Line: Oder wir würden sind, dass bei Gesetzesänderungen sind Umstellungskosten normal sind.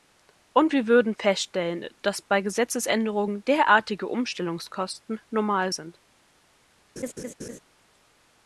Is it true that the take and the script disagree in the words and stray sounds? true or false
true